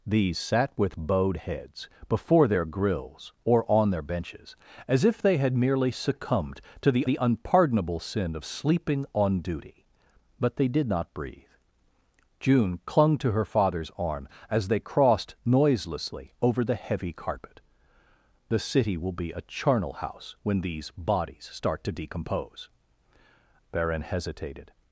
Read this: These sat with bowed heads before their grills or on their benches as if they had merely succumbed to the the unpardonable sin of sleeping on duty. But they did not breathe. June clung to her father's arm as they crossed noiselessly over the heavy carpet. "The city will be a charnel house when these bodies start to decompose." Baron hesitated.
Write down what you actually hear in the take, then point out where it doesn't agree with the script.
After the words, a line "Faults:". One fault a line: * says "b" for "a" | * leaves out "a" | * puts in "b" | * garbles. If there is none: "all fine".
These sat with bowed heads before their grills or on their benches as if they had merely succumbed to the the unpardonable sin of sleeping on duty. But they did not breathe. June clung to her father's arm as they crossed noiselessly over the heavy carpet. "The city will be a charnel house when these bodies start to decompose." Baron hesitated.
Faults:
all fine